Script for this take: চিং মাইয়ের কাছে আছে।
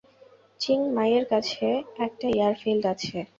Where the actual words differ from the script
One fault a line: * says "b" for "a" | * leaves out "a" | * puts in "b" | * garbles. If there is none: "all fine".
* puts in "একটা এয়ারফিল্ড"